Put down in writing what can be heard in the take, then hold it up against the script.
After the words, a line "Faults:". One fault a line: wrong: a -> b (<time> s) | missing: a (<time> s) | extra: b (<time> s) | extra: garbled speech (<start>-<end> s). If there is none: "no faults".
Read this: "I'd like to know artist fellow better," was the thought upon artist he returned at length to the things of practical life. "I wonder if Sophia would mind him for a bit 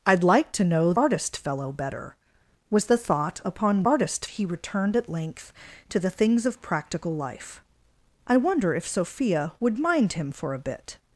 "I'd like to know artist fellow better," was the thought upon artist he returned at length to the things of practical life. "I wonder if Sophia would mind him for a bit
Faults:
no faults